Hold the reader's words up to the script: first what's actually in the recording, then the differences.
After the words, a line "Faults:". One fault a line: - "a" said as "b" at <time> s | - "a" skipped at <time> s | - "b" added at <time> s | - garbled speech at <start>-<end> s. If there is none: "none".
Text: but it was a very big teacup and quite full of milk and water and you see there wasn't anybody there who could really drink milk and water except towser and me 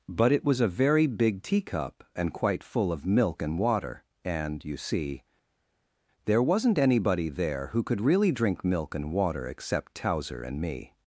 but it was a very big teacup and quite full of milk and water and you see there wasn't anybody there who could really drink milk and water except towser and me
Faults:
none